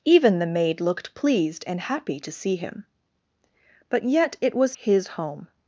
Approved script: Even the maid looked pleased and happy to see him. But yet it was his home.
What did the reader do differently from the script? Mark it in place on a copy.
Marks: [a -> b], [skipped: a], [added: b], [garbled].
Even the maid looked pleased and happy to see him. But yet it was his home.